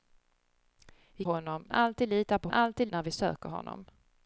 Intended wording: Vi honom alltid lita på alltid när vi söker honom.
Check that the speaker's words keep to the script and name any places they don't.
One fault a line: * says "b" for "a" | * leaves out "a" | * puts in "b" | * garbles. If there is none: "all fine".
all fine